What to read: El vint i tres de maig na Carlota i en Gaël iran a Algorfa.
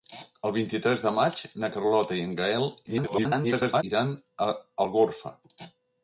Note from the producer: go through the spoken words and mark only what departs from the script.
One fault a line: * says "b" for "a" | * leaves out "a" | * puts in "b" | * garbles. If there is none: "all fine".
* garbles